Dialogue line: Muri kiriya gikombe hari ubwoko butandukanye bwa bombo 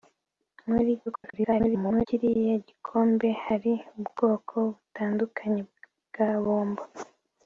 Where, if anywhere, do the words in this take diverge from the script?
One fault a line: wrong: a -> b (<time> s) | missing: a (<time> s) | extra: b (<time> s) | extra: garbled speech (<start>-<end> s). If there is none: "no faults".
extra: garbled speech (1.1-2.1 s)